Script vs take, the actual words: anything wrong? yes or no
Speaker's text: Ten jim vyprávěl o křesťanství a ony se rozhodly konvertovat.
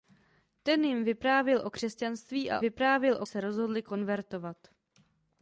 yes